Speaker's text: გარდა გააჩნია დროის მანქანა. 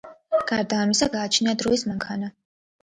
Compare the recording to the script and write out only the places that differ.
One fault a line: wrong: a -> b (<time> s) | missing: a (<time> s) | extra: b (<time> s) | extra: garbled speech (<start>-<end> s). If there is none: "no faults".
extra: ამისა (0.8 s)